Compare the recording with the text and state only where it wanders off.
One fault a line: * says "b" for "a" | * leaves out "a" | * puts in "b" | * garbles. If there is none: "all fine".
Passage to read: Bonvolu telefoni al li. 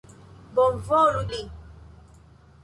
* leaves out "telefoni al"